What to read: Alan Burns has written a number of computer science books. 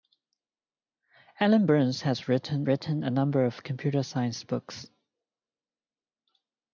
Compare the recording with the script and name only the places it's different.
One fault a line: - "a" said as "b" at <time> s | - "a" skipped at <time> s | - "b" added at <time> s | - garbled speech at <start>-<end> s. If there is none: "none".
- "written" added at 2.7 s